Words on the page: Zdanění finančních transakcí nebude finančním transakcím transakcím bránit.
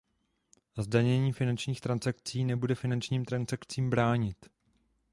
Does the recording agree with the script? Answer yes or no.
no